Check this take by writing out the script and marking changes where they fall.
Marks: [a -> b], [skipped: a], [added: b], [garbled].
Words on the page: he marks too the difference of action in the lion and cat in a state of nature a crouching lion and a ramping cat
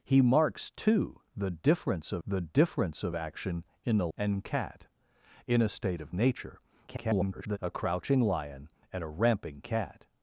he marks too the difference of [added: the difference of] action in the [skipped: lion] and cat in a state of nature [garbled] a crouching lion and a ramping cat